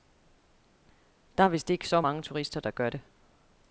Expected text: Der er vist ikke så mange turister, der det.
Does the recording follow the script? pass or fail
fail